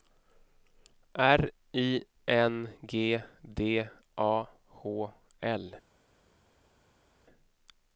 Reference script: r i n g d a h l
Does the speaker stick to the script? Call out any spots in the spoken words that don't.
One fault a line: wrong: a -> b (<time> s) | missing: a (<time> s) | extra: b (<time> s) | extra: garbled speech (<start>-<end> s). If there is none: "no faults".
no faults